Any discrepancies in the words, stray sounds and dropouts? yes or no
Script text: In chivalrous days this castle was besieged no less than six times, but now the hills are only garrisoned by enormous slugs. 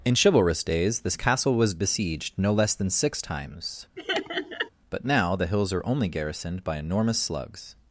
yes